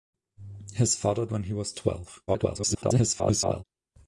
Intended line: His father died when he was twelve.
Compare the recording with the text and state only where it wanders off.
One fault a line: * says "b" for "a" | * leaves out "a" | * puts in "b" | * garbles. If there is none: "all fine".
* leaves out "died"
* garbles